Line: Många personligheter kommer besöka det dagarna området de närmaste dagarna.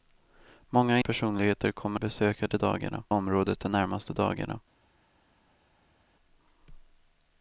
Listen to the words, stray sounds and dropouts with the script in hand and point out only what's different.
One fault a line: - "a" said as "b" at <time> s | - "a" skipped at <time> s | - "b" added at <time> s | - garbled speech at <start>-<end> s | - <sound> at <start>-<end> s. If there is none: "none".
none